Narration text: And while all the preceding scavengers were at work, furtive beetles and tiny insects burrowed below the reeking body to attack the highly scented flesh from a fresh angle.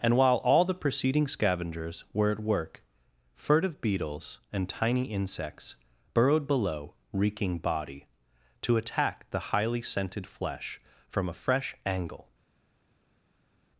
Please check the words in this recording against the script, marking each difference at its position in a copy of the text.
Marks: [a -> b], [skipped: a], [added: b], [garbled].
And while all the preceding scavengers were at work, furtive beetles and tiny insects burrowed below [skipped: the] reeking body to attack the highly scented flesh from a fresh angle.